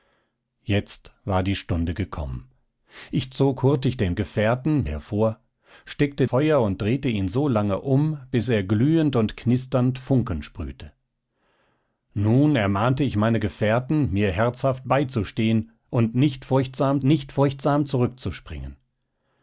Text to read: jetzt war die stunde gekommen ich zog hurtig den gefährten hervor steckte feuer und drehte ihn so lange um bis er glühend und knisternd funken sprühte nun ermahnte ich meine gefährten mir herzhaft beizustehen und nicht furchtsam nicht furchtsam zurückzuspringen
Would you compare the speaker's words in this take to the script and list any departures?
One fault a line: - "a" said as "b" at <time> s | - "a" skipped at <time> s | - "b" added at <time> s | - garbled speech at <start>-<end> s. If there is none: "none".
none